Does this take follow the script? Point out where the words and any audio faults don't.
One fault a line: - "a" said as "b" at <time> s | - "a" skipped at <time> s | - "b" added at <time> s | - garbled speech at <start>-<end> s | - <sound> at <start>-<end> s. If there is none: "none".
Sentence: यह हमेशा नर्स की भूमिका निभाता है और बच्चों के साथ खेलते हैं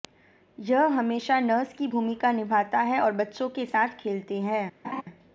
- laugh at 4.8-5.0 s